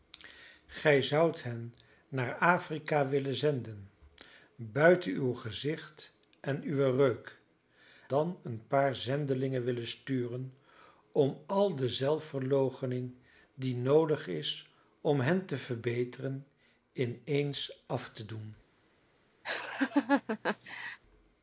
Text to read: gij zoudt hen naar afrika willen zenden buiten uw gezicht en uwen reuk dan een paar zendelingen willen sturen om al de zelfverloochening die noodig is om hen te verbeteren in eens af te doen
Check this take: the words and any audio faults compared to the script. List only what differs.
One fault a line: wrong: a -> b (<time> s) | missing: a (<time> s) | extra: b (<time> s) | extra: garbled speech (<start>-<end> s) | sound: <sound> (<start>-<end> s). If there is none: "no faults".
sound: laugh (19.4-21.0 s)